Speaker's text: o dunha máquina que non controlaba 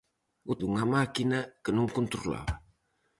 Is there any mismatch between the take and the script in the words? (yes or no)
no